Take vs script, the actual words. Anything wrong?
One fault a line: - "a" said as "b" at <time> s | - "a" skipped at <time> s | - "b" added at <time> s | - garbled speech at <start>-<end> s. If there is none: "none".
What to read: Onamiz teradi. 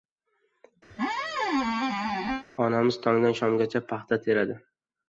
- "tongdan shomgacha paxta" added at 3.1 s